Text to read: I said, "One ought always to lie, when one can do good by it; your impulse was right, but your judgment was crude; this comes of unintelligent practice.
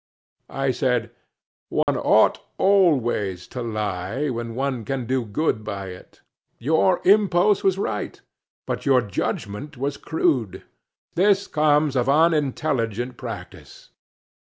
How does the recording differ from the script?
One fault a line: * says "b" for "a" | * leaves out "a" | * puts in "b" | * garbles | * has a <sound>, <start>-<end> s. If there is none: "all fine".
* has a dropout, 1.8-1.9 s